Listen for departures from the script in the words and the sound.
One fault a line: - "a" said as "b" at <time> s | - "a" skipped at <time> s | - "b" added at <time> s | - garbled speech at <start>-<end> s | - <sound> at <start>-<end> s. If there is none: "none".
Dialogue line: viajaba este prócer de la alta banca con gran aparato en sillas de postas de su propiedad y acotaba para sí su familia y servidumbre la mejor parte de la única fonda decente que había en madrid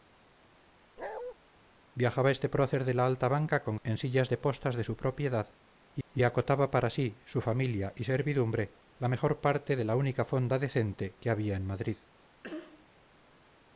- bark at 1.0-1.3 s
- "gran aparato" skipped at 3.8 s
- "y" added at 6.1 s
- cough at 12.4-12.9 s